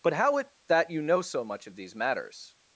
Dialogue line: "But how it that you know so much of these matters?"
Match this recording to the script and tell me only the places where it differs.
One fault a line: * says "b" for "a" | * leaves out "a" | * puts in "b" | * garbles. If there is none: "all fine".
all fine